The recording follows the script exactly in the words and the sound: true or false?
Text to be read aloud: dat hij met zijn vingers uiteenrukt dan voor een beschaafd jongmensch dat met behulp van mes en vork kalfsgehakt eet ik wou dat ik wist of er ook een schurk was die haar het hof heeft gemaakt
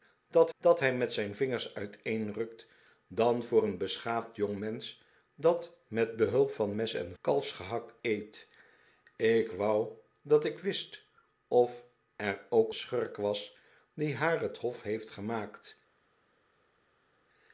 false